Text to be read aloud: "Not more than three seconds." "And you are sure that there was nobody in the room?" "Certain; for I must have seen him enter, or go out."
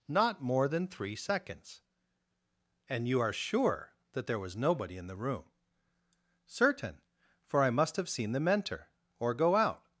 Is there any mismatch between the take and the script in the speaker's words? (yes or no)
yes